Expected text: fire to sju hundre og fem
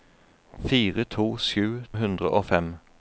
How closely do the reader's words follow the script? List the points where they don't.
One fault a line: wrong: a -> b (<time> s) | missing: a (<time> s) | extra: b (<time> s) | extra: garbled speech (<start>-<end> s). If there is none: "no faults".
no faults